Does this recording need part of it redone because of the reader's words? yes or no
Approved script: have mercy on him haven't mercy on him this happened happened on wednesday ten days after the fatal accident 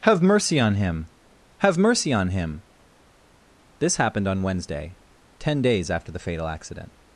yes